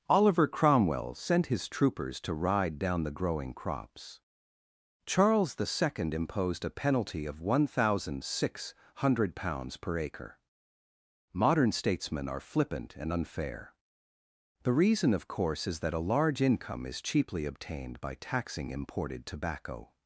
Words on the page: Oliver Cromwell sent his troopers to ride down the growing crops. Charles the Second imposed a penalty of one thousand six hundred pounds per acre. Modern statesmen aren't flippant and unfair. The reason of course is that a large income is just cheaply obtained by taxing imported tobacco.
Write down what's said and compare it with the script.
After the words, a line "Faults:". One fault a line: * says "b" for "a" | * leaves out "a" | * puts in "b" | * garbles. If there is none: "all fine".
Oliver Cromwell sent his troopers to ride down the growing crops. Charles the Second imposed a penalty of one thousand six hundred pounds per acre. Modern statesmen are flippant and unfair. The reason of course is that a large income is cheaply obtained by taxing imported tobacco.
Faults:
* says "are" for "aren't"
* leaves out "just"